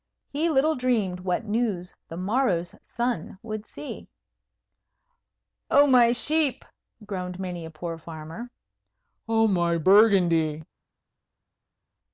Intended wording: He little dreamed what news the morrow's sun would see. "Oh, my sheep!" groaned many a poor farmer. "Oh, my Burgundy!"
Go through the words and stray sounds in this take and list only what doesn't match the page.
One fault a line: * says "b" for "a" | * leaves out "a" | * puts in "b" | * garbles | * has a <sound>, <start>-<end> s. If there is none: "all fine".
all fine